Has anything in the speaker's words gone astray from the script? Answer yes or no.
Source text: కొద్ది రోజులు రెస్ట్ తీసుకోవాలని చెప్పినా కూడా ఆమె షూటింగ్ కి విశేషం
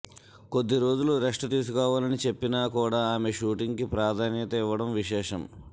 yes